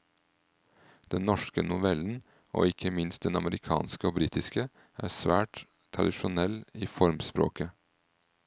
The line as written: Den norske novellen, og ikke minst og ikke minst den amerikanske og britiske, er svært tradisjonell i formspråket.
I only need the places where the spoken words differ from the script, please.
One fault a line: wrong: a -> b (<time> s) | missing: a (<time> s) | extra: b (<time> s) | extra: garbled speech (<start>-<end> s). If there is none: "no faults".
missing: og ikke minst (3.2 s)